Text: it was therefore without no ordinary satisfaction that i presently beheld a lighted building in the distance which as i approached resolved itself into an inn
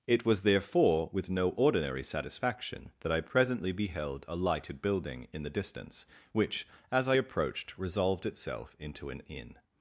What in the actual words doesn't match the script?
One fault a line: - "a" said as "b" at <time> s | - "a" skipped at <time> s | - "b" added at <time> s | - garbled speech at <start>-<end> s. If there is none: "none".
- "without" said as "with" at 1.1 s